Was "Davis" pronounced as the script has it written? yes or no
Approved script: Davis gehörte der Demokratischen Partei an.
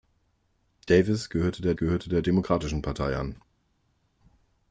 yes